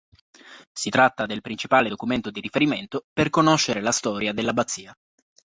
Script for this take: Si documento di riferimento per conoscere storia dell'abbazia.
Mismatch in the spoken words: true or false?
true